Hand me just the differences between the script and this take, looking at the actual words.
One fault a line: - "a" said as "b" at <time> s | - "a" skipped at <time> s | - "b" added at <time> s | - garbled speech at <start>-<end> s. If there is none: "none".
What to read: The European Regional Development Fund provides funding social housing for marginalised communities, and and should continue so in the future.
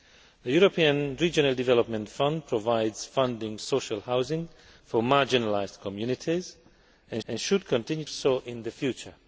none